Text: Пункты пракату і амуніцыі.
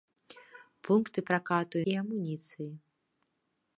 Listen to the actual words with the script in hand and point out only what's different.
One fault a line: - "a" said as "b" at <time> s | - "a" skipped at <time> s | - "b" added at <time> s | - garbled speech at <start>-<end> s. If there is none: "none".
none